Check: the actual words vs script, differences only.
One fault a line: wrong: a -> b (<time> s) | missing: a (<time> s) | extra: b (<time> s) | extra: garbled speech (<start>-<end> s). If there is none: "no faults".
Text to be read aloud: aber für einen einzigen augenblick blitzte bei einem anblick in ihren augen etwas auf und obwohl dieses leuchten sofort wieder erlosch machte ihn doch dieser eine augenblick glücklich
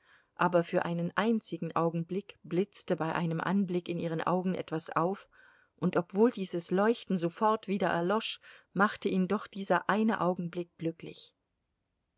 no faults